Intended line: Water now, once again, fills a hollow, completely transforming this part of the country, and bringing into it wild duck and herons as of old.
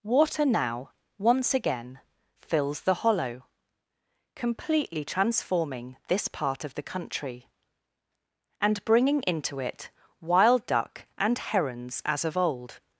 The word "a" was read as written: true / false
false